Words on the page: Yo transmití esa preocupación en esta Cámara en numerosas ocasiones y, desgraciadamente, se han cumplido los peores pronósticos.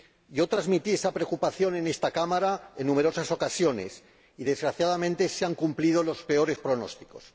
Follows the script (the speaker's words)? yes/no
yes